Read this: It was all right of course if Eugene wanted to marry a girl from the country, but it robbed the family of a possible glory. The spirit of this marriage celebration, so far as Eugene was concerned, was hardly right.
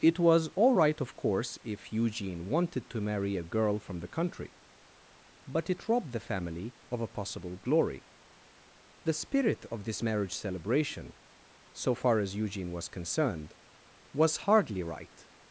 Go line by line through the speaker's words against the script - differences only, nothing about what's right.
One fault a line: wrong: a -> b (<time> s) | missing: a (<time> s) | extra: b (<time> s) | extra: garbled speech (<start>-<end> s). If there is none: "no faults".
no faults